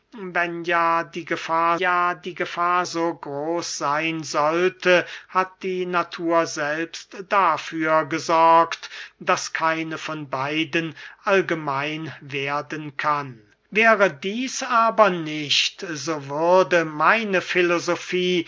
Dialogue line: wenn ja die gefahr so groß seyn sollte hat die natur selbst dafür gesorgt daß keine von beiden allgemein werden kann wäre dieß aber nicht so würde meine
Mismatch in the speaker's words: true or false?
true